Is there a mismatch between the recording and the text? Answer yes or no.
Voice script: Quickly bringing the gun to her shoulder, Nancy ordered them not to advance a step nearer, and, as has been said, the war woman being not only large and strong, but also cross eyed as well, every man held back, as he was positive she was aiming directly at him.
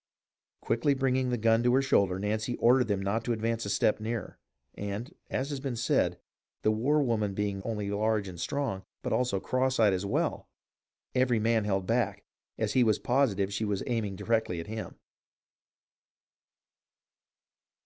yes